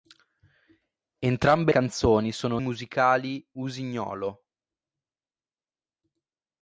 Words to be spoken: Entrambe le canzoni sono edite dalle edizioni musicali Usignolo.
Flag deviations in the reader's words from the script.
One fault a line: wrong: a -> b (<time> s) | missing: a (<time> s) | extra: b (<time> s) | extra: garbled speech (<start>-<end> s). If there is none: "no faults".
missing: le (1.7 s)
missing: edite dalle edizioni (2.6 s)